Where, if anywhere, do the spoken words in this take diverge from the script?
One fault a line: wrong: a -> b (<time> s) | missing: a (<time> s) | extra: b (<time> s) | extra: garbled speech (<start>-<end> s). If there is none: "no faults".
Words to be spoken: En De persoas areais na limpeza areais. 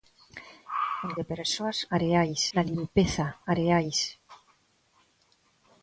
no faults